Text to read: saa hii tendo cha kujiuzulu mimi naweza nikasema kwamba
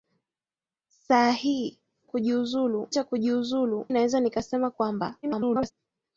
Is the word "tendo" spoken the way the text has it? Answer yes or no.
no